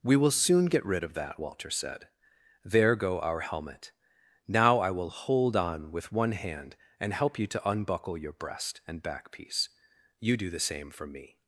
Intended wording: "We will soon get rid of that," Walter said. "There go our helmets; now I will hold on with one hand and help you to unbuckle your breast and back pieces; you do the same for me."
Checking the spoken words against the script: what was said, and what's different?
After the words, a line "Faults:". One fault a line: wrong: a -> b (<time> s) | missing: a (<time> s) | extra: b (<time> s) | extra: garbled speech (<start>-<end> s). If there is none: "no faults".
"We will soon get rid of that," Walter said. "There go our helmet; now I will hold on with one hand and help you to unbuckle your breast and back piece; you do the same for me."
Faults:
wrong: helmets -> helmet (3.4 s)
wrong: pieces -> piece (9.3 s)